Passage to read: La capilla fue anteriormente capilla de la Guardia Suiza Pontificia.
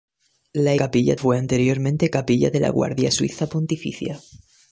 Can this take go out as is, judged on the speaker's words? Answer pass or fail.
pass